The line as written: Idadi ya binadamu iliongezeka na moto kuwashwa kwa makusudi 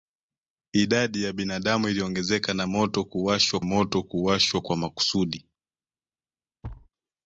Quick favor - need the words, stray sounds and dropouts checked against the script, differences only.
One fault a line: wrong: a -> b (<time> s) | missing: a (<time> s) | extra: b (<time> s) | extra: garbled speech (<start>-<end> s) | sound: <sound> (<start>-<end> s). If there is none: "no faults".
extra: moto kuwashwa (3.6 s)
sound: thud (6.6-6.9 s)